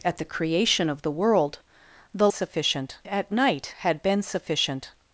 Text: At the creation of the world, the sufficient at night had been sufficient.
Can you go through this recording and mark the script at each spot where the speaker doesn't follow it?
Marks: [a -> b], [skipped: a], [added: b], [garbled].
At the creation of the world, the sufficient at night had been sufficient.